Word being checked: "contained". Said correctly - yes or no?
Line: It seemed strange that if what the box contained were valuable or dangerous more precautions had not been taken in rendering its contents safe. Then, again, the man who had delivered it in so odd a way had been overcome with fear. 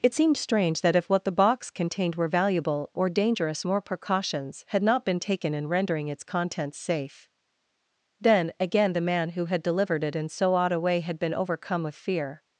yes